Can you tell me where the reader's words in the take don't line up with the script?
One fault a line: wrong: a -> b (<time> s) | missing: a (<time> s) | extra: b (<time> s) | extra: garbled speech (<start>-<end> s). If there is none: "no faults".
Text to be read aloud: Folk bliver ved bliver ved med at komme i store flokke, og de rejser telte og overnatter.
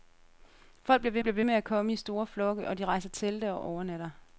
no faults